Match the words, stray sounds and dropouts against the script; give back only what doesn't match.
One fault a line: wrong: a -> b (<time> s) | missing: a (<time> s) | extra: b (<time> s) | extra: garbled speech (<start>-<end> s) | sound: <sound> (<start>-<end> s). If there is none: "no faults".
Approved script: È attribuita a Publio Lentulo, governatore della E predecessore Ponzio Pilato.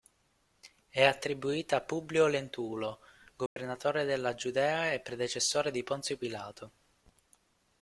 sound: dropout (3.5-3.6 s)
extra: Giudea (4.3 s)
extra: di (5.7 s)